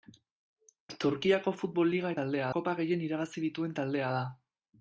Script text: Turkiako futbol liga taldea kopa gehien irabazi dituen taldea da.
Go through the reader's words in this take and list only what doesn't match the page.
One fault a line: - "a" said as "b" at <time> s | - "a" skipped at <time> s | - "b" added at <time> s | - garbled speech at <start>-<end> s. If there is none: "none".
none